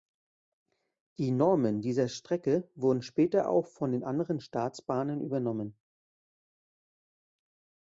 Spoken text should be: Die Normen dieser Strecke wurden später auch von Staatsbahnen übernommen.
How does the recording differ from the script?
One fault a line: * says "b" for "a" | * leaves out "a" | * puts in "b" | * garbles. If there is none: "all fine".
* puts in "den anderen"